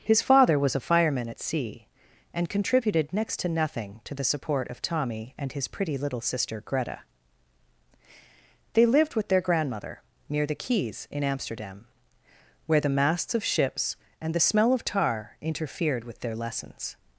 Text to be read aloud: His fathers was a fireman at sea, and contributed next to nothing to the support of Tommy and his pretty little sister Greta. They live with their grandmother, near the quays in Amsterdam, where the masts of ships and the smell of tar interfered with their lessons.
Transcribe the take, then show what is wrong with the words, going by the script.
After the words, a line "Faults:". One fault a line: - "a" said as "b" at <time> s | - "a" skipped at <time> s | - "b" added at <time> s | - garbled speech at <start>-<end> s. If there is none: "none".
His father was a fireman at sea, and contributed next to nothing to the support of Tommy and his pretty little sister Greta. They lived with their grandmother, near the quays in Amsterdam, where the masts of ships and the smell of tar interfered with their lessons.
Faults:
- "fathers" said as "father" at 0.2 s
- "live" said as "lived" at 8.9 s